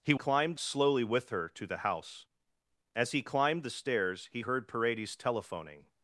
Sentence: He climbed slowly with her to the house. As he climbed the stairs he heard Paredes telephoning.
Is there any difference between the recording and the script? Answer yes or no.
no